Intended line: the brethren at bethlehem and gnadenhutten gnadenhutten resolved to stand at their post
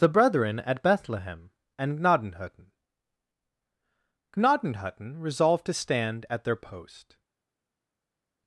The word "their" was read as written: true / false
true